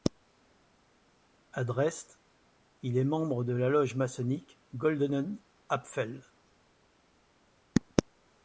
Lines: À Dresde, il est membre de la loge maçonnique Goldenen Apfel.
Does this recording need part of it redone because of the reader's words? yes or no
no